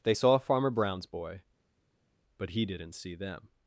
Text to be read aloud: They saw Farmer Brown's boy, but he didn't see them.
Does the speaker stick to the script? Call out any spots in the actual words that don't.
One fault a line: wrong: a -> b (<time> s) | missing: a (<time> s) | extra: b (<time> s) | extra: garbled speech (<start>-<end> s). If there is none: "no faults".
no faults